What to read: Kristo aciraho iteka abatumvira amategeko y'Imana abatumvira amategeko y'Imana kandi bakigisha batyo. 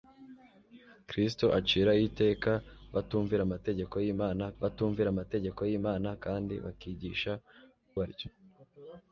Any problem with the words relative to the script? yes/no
no